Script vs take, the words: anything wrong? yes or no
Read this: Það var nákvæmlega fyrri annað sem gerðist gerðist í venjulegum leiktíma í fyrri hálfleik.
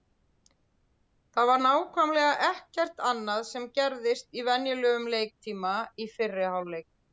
yes